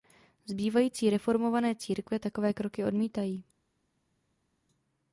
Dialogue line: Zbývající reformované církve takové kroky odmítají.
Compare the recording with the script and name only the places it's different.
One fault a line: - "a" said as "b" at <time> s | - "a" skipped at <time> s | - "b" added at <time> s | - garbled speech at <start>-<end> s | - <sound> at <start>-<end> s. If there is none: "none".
none